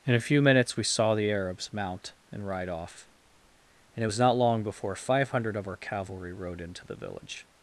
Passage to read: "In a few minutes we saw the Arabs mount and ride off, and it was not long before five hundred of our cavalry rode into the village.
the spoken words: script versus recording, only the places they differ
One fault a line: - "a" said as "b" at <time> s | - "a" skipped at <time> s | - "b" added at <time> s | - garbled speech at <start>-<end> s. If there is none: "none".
none